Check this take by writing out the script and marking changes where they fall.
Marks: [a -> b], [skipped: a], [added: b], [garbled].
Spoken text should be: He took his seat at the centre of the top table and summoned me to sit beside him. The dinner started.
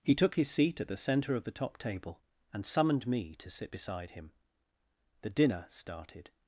He took his seat at the centre of the top table and summoned me to sit beside him. The dinner started.